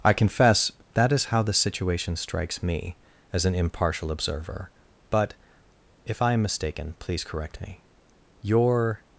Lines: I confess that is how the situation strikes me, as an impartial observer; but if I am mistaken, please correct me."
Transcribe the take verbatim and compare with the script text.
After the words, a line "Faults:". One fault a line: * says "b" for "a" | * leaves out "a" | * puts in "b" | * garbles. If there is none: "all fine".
I confess that is how the situation strikes me, as an impartial observer; but if I am mistaken, please correct me." "Your
Faults:
* puts in "Your"